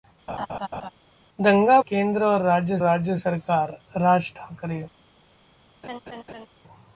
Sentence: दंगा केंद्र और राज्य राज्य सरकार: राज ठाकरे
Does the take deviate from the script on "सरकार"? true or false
false